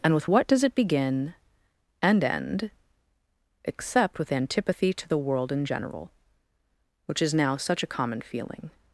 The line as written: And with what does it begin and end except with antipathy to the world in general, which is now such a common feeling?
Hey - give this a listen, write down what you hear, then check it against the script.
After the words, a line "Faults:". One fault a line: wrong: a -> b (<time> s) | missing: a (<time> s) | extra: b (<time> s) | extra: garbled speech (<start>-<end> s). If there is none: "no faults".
And with what does it begin and end except with antipathy to the world in general, which is now such a common feeling?
Faults:
no faults